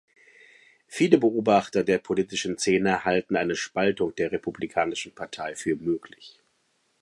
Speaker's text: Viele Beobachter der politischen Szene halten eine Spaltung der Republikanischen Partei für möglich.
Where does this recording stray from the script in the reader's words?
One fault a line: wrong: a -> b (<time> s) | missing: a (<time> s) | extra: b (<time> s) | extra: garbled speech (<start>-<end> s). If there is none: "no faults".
no faults